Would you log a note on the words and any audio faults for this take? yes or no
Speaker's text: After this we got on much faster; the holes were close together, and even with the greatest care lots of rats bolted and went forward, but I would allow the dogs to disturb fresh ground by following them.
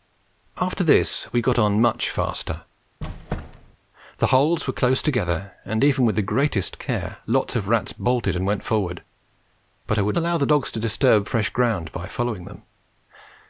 yes